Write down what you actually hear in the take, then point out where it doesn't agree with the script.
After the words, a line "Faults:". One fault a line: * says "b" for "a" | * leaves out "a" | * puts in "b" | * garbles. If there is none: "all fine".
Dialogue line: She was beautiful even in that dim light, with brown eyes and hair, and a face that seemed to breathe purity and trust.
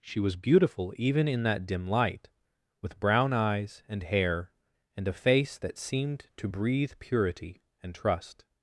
She was beautiful even in that dim light, with brown eyes and hair, and a face that seemed to breathe purity and trust.
Faults:
all fine